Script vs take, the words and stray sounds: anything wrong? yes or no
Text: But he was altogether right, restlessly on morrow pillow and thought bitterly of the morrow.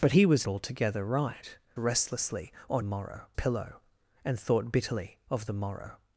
no